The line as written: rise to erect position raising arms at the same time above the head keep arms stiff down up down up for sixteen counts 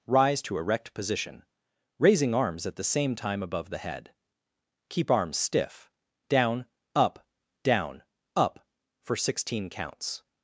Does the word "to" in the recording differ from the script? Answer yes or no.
no